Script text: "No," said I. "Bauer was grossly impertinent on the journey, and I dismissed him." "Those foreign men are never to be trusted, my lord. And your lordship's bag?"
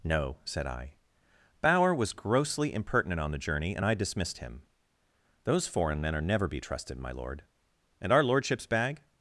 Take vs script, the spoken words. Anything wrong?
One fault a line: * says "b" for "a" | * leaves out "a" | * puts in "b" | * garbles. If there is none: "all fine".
* leaves out "to"
* says "our" for "your"